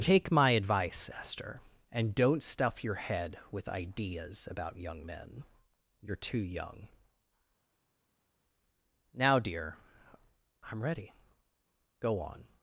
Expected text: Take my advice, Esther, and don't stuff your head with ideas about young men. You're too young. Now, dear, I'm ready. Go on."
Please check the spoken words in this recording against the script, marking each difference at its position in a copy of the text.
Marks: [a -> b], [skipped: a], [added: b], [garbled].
Take my advice, Esther, and don't stuff your head with ideas about young men. You're too young. Now, dear, I'm ready. Go on."